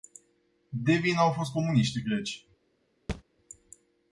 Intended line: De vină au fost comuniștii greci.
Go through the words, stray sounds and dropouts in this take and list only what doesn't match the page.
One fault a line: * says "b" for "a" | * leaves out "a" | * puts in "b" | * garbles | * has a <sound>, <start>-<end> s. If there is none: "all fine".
* has a thud, 3.1-3.2 s